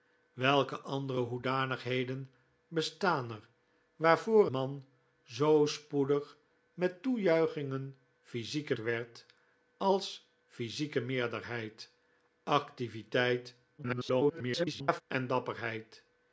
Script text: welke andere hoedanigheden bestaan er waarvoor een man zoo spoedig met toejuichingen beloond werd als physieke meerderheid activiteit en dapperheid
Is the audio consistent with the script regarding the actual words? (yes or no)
no